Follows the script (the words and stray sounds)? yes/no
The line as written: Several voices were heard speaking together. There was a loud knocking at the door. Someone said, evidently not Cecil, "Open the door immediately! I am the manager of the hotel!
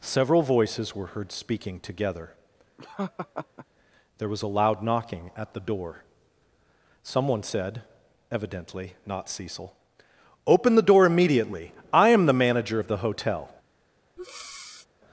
no